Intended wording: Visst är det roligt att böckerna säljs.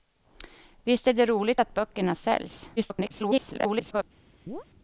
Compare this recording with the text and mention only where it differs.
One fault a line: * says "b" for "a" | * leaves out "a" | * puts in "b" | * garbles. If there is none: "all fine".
* garbles